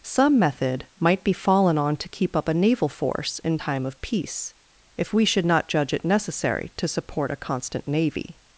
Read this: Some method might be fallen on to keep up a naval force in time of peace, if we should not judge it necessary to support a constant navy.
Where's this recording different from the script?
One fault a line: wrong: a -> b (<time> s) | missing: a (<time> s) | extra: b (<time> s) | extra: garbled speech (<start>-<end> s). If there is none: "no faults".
no faults